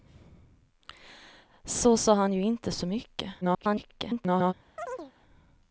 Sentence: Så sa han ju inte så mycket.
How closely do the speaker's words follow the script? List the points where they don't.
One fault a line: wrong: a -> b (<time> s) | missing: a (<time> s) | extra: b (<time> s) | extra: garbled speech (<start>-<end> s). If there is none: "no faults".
extra: garbled speech (3.4-4.5 s)